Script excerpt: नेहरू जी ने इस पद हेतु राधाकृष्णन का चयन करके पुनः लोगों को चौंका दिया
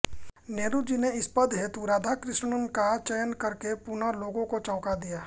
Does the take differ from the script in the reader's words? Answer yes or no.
no